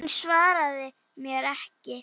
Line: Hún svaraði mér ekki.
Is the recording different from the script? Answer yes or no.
no